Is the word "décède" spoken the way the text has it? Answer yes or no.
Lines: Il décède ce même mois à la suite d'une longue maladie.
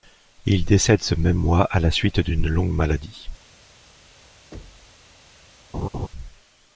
yes